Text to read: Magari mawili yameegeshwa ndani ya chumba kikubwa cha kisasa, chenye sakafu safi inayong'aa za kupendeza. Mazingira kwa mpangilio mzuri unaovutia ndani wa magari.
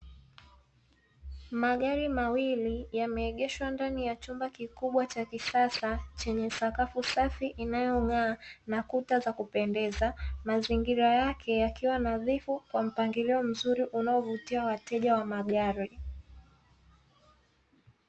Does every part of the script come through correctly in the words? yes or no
no